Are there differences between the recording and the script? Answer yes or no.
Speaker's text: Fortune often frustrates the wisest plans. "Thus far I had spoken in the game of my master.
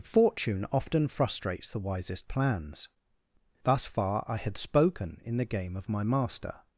no